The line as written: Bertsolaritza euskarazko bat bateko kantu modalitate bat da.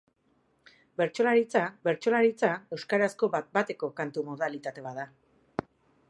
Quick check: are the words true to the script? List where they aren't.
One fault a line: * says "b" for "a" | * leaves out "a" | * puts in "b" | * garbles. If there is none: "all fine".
* puts in "bertsolaritza"